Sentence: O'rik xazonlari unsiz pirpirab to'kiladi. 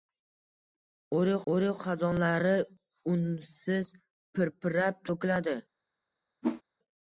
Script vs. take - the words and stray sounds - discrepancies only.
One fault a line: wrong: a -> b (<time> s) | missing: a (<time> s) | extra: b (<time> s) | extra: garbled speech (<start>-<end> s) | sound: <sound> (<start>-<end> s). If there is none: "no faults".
extra: o'rik (1.5 s)
sound: whoosh (6.4-6.6 s)